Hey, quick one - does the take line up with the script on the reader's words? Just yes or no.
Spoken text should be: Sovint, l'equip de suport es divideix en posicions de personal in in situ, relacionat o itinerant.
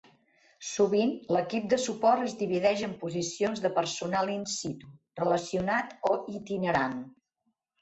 no